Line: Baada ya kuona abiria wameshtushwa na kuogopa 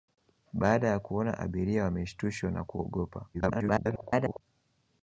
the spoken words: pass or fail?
fail